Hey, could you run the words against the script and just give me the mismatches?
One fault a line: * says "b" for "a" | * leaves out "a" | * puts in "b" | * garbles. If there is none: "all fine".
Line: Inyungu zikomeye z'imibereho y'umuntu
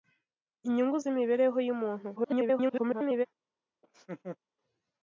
* leaves out "zikomeye"
* garbles